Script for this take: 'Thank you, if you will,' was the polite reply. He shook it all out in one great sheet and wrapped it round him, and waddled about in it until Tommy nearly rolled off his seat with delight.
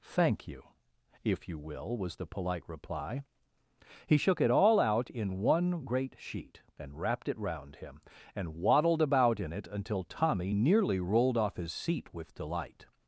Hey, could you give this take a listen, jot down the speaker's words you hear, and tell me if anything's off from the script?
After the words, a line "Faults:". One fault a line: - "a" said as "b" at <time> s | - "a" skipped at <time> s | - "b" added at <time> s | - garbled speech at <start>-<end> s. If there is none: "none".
'Thank you, if you will,' was the polite reply. He shook it all out in one great sheet and wrapped it round him, and waddled about in it until Tommy nearly rolled off his seat with delight.
Faults:
none